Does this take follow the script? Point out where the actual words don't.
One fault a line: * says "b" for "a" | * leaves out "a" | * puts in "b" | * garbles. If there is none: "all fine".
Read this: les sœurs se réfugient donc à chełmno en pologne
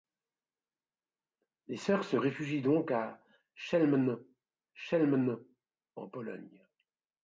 * puts in "chełmno"